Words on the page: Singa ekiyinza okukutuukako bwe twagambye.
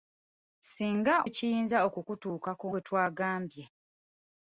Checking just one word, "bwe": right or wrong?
right